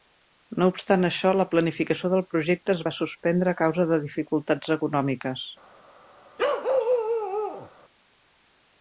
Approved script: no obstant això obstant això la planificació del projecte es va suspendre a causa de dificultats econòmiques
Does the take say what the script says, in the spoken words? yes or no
no